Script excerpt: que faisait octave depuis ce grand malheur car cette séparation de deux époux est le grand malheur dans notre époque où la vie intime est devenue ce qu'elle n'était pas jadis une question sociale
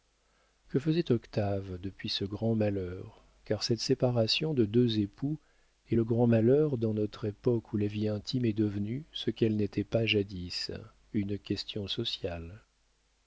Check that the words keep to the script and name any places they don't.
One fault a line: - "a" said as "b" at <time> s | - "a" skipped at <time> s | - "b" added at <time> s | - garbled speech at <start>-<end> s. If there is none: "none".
none